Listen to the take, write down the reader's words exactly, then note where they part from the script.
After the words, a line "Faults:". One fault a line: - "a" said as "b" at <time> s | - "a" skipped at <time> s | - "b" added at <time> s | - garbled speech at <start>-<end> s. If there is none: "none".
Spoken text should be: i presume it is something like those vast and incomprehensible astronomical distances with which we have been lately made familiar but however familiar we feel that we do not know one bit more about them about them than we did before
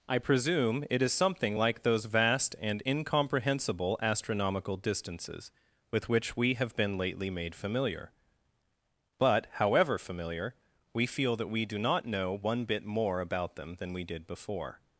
i presume it is something like those vast and incomprehensible astronomical distances with which we have been lately made familiar but however familiar we feel that we do not know one bit more about them than we did before
Faults:
- "about them" skipped at 13.8 s